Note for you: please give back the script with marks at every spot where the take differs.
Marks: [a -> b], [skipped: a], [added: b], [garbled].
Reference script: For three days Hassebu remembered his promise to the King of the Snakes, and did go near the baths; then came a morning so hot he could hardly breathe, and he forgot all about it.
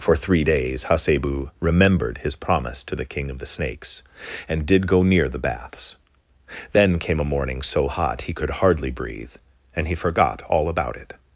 For three days Hassebu remembered his promise to the King of the Snakes, and did go near the baths; then came a morning so hot he could hardly breathe, and he forgot all about it.